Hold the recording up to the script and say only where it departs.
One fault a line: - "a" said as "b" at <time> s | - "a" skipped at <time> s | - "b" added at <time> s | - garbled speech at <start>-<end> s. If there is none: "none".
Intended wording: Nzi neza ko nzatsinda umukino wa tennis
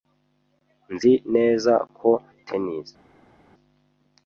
- "nzatsinda umukino wa" skipped at 2.1 s